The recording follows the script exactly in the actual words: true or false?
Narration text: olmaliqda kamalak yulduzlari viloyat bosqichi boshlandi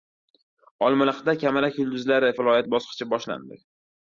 true